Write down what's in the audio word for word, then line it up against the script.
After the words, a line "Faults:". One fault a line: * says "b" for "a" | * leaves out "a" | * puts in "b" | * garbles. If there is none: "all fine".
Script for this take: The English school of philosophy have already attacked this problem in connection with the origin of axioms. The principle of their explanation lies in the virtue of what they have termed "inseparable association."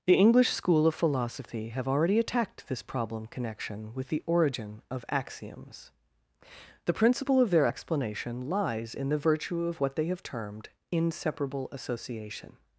The English school of philosophy have already attacked this problem connection with the origin of axioms. The principle of their explanation lies in the virtue of what they have termed "inseparable association."
Faults:
* leaves out "in"